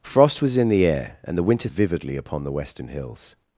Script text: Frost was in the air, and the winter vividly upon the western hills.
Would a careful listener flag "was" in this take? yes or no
no